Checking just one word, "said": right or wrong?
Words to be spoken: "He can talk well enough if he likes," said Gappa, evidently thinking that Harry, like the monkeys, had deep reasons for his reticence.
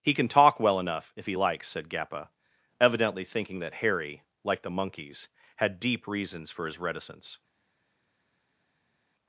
right